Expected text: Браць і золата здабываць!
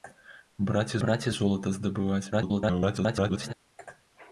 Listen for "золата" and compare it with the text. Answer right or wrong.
right